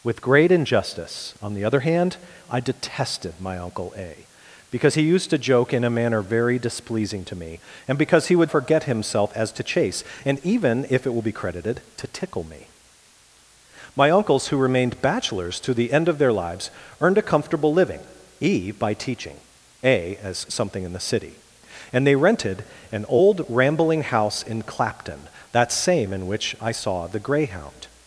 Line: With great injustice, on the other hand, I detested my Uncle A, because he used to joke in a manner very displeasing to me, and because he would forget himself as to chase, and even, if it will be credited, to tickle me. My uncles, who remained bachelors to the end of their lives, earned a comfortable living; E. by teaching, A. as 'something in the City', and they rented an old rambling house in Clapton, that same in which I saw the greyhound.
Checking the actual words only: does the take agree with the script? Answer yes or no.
yes